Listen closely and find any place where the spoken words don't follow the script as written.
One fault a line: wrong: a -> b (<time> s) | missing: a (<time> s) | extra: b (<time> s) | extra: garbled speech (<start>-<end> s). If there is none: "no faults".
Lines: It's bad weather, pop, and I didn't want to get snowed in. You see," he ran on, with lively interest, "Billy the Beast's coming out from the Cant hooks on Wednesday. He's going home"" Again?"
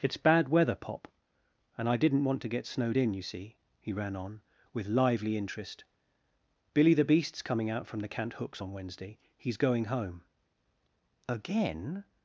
no faults